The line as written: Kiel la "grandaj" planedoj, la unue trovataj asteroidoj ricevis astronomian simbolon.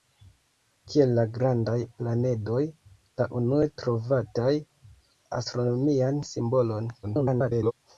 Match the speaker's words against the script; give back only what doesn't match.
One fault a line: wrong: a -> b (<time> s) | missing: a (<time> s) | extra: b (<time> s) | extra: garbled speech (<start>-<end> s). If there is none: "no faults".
missing: asteroidoj ricevis (4.6 s)
extra: garbled speech (7.0-7.7 s)